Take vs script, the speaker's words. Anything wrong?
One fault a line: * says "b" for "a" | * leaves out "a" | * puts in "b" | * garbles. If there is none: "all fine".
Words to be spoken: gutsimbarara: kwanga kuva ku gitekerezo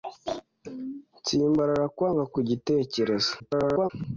* leaves out "kuva"
* garbles